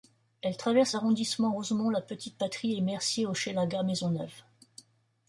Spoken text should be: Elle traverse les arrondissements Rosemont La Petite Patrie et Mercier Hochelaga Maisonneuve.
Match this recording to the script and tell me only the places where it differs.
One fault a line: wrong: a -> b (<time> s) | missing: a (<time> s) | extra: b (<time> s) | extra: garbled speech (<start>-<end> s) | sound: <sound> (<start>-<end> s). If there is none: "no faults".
missing: les (0.9 s)